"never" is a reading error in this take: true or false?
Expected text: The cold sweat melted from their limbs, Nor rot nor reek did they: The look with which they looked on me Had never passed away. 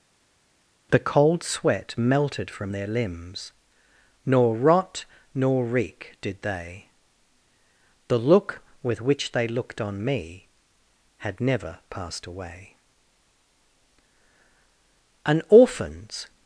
false